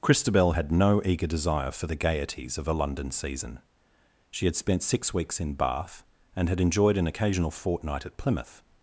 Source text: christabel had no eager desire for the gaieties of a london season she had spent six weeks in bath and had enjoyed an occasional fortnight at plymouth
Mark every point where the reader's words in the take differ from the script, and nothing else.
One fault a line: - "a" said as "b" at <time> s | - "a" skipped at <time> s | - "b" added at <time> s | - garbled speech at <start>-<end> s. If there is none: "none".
none